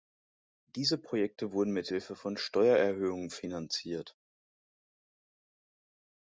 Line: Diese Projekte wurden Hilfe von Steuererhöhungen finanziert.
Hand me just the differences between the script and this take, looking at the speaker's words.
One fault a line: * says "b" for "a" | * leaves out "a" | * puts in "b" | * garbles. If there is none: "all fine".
* puts in "mit"